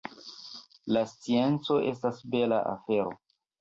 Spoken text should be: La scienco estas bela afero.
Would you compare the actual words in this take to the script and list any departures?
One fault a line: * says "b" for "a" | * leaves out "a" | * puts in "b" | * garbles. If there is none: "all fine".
all fine